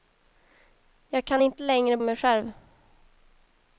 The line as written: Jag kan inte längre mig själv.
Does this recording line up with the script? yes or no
yes